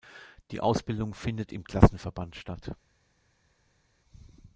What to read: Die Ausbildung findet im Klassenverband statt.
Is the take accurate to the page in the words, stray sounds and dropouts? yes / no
yes